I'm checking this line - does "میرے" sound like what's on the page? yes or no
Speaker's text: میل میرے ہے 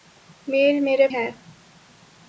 yes